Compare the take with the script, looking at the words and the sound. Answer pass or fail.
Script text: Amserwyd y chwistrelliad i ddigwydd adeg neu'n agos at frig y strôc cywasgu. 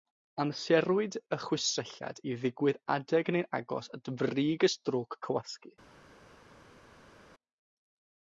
pass